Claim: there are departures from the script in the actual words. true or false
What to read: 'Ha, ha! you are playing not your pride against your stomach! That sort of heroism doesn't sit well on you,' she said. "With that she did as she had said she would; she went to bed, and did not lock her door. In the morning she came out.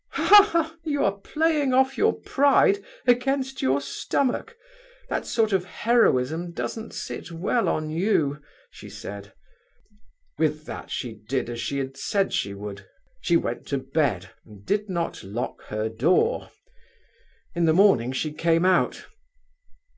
true